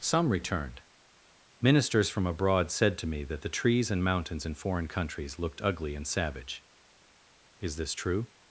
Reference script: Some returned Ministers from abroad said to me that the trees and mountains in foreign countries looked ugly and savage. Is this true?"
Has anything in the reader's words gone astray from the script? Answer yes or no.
no